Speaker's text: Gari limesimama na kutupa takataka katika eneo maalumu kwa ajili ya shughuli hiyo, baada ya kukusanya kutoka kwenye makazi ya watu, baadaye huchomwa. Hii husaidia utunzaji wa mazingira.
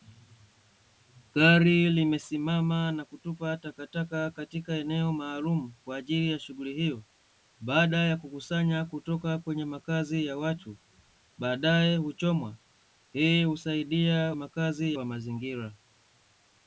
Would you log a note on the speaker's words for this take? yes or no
yes